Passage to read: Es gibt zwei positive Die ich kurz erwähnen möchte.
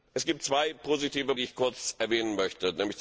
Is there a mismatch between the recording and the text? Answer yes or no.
no